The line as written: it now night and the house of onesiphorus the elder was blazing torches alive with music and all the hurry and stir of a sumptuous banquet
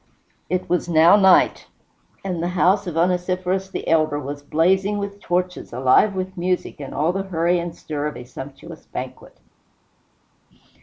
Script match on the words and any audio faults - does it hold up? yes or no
no